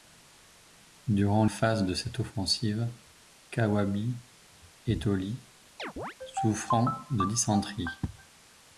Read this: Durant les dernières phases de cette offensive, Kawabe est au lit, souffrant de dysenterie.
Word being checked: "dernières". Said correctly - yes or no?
no